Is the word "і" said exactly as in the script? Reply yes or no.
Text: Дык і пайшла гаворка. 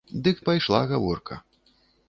yes